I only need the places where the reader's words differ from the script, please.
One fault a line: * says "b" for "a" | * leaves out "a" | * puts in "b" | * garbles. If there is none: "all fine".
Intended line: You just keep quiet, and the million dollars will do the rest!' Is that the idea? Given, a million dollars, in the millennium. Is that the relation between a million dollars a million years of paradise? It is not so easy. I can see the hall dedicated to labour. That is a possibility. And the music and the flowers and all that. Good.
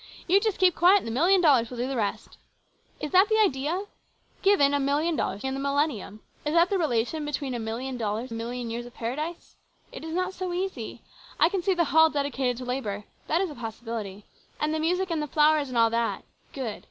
all fine